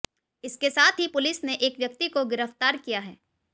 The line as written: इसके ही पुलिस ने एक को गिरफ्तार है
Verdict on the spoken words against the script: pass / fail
fail